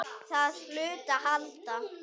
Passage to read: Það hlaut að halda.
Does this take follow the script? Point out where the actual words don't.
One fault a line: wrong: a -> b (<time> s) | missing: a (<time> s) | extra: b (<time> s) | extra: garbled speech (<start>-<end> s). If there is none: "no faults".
no faults